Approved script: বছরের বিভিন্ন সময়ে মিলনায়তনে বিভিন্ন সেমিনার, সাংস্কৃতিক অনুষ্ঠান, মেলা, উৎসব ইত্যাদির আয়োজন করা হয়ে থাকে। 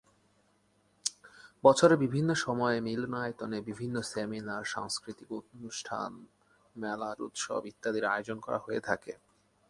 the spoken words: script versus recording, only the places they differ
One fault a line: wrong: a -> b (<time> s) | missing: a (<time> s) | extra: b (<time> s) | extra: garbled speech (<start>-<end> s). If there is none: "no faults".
no faults